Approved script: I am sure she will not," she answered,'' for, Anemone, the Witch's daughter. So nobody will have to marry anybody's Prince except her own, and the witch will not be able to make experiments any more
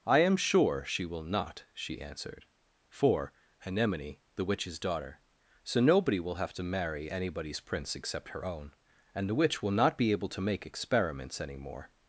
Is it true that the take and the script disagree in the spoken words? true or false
false